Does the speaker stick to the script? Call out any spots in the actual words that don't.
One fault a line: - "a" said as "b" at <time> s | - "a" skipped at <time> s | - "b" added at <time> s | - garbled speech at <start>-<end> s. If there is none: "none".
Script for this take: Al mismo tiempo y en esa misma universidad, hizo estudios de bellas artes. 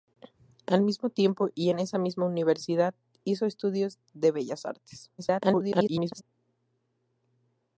- garbled speech at 5.2-6.2 s